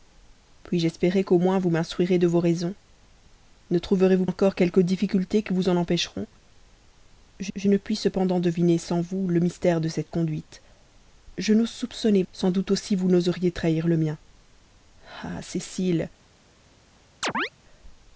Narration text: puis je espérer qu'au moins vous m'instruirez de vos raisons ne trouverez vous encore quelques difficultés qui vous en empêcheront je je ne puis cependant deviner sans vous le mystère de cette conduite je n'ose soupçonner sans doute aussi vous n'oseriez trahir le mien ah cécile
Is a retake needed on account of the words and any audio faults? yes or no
yes